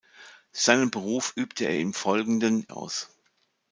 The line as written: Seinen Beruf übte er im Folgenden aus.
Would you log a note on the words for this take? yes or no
no